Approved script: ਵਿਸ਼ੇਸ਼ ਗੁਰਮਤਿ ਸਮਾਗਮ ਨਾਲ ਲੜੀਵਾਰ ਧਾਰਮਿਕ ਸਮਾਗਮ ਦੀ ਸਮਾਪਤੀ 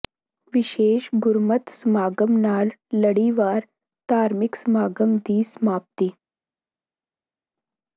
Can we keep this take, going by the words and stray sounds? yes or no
yes